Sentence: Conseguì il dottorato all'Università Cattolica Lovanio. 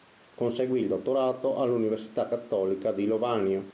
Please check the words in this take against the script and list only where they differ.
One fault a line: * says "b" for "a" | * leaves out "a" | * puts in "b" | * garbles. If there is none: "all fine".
* puts in "di"